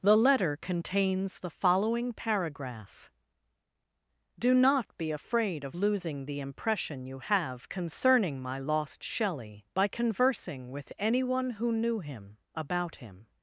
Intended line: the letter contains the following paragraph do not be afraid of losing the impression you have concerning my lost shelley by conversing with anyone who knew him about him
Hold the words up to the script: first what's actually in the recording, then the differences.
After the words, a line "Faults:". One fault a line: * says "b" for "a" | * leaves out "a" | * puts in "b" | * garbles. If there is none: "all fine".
the letter contains the following paragraph do not be afraid of losing the impression you have concerning my lost shelley by conversing with anyone who knew him about him
Faults:
all fine